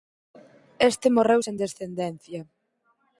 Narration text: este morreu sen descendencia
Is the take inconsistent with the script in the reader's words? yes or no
no